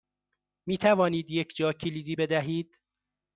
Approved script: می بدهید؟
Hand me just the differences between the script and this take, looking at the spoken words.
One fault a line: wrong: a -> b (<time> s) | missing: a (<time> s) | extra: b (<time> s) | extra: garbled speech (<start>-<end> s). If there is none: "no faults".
extra: توانید یک جاکلیدی (0.8 s)